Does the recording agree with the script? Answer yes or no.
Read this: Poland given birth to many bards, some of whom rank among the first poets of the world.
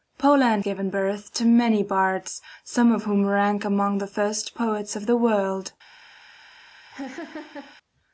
yes